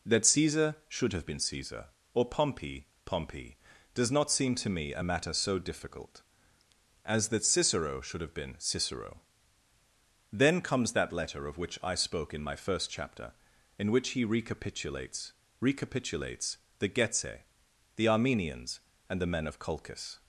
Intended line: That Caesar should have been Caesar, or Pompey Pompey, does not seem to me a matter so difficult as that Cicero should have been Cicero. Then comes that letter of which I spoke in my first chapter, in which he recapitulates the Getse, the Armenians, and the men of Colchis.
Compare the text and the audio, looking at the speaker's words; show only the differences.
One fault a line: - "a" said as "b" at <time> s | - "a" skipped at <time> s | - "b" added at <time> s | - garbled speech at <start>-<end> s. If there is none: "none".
- "recapitulates" added at 15.6 s